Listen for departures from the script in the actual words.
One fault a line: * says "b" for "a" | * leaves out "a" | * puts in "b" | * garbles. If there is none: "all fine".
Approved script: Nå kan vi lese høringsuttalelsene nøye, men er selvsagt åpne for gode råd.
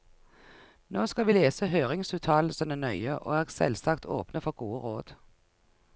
* says "skal" for "kan"
* says "og" for "men"